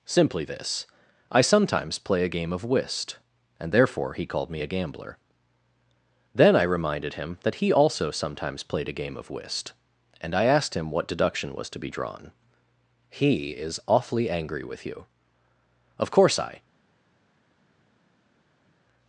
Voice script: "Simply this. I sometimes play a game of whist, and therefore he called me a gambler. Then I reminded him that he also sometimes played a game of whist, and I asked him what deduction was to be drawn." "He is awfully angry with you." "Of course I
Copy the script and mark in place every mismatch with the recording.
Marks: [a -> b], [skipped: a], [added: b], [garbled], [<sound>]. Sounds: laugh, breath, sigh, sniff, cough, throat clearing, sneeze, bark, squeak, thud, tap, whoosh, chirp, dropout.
"Simply this. I sometimes play a game of whist, and therefore he called me a gambler. Then I reminded him that he also sometimes played a game of whist, and I asked him what deduction was to be drawn." "He is awfully angry with you." "Of course I